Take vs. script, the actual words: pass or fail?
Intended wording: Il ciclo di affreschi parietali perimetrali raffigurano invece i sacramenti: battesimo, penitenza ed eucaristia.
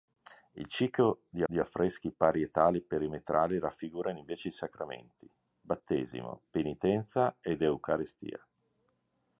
fail